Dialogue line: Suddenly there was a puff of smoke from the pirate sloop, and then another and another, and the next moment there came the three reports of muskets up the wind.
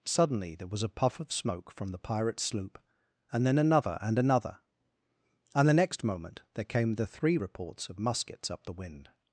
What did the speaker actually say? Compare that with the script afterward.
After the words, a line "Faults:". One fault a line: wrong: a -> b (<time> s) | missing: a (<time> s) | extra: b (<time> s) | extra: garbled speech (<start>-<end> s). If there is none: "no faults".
Suddenly there was a puff of smoke from the pirate sloop, and then another and another, and the next moment there came the three reports of muskets up the wind.
Faults:
no faults